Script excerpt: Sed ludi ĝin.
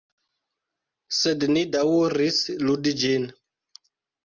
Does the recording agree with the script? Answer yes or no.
no